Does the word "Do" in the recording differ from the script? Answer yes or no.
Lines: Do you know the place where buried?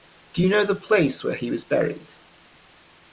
no